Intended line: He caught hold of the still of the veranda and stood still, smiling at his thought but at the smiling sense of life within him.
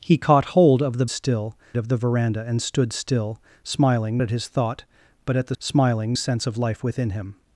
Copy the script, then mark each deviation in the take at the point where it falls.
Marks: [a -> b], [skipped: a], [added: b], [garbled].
He caught hold of the still of the veranda and stood still, smiling at his thought but at the smiling sense of life within him.